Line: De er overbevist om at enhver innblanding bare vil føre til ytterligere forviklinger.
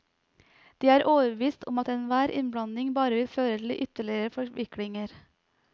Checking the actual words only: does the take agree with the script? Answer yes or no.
yes